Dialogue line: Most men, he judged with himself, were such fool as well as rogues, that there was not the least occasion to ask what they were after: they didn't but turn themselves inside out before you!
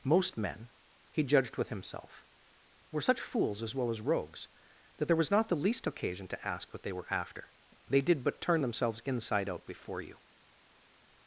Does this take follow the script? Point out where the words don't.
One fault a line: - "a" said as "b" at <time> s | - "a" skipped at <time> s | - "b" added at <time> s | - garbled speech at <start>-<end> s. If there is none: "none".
- "fool" said as "fools" at 3.2 s
- "didn't" said as "did" at 8.0 s